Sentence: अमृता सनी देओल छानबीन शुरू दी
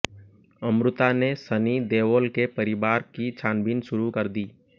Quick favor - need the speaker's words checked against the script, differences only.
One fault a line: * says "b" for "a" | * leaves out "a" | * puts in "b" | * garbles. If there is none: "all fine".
* puts in "ने"
* puts in "के परिवार की"
* puts in "कर"